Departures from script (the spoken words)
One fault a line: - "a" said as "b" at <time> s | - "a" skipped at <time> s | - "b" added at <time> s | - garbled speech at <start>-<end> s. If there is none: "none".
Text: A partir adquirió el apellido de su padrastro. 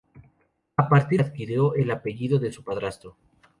none